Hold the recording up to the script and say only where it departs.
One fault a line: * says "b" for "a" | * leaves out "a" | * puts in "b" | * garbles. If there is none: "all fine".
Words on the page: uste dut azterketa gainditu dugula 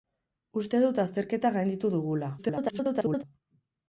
* garbles